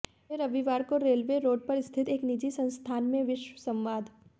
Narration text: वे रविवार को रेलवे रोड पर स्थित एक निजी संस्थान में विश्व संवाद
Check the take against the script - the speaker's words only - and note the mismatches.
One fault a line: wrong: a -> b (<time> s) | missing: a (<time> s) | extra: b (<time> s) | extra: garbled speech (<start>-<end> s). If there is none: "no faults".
no faults